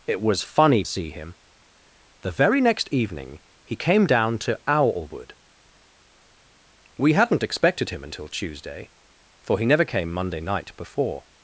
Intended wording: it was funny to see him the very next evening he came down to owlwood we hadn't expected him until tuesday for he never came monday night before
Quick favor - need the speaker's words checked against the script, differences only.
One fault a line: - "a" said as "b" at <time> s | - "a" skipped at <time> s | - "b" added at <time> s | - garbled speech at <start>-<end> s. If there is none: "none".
- "to" skipped at 0.8 s